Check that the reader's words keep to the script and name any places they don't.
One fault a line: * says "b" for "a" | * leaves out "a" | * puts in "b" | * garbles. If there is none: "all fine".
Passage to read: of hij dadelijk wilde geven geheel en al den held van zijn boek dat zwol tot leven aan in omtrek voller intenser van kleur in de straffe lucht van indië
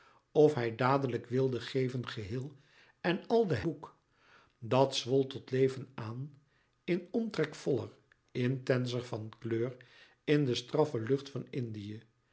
* leaves out "held van zijn"